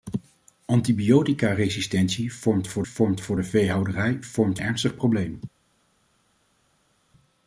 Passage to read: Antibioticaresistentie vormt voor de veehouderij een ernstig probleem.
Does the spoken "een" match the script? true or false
false